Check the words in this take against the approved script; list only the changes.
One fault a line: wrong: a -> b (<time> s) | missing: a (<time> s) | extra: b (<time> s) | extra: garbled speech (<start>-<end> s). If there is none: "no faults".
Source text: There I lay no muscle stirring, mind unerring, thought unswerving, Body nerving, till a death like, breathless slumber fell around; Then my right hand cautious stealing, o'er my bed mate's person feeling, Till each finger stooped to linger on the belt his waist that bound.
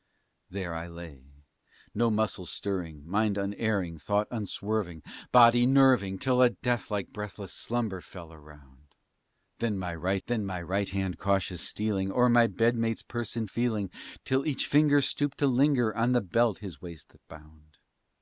extra: Then my right (10.3 s)